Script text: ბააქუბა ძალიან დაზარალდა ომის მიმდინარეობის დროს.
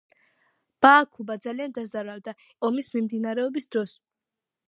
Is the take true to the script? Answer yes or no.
yes